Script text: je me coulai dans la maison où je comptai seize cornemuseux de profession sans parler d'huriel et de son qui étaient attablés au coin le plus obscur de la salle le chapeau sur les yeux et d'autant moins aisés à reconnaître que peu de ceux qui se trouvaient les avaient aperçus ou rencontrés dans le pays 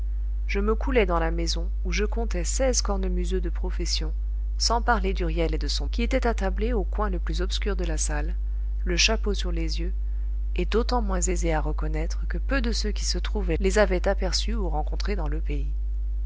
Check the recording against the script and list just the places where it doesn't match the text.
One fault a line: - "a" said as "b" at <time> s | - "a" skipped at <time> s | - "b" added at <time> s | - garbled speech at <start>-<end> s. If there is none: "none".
none